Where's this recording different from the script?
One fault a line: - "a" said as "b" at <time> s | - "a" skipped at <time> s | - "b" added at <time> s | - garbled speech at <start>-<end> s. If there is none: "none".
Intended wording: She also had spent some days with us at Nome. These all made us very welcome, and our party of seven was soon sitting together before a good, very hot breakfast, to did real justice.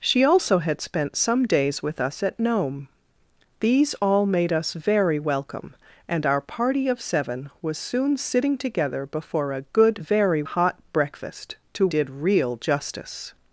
none